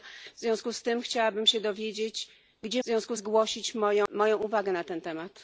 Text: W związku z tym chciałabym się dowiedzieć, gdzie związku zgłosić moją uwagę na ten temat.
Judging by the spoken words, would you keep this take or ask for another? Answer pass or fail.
pass